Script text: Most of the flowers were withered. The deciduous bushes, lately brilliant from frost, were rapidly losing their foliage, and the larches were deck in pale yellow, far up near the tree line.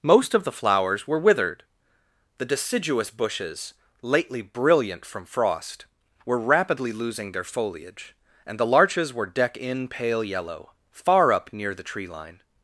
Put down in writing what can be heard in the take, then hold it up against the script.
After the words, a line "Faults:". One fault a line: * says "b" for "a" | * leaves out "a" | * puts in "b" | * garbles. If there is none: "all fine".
Most of the flowers were withered. The deciduous bushes, lately brilliant from frost, were rapidly losing their foliage, and the larches were deck in pale yellow, far up near the tree line.
Faults:
all fine